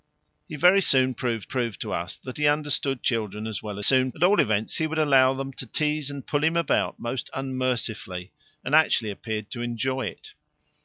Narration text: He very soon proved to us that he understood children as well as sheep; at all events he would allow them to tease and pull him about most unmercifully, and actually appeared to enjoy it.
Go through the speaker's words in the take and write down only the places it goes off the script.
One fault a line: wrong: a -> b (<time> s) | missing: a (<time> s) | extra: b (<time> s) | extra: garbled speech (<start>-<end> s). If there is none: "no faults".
extra: proved (1.5 s)
wrong: sheep -> soon (3.8 s)